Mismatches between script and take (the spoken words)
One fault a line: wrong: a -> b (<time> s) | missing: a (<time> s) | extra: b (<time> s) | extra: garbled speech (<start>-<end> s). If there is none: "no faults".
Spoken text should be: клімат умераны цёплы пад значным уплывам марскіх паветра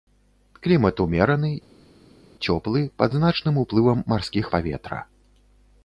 no faults